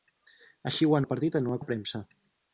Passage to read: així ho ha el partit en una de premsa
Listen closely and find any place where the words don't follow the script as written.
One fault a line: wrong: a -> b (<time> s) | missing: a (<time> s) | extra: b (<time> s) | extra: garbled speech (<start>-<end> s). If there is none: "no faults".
no faults